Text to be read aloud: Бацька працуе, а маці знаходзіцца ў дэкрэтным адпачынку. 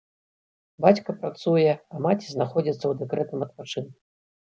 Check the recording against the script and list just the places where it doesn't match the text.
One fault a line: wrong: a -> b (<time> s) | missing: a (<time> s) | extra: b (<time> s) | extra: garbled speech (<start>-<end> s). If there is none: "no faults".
no faults